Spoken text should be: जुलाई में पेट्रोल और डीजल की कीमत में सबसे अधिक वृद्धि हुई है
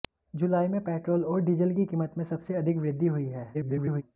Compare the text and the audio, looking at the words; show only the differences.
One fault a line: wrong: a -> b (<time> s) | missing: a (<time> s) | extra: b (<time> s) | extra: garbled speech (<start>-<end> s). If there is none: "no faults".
extra: garbled speech (3.5-4.0 s)